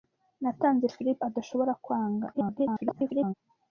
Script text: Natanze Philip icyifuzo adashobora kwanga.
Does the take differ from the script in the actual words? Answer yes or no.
yes